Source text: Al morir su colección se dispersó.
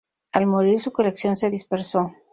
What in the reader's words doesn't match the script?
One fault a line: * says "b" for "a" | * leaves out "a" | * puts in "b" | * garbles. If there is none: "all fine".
all fine